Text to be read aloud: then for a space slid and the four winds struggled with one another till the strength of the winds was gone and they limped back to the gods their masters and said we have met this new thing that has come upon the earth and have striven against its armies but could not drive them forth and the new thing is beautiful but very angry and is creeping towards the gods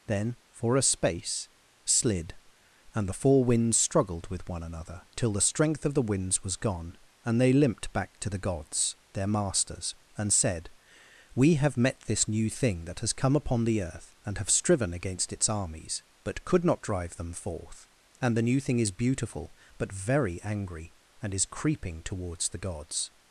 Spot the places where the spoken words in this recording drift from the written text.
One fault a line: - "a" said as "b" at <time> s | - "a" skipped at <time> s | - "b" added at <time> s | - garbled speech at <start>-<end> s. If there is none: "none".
none